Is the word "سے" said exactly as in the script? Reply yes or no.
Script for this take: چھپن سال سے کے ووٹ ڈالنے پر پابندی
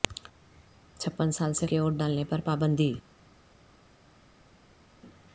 yes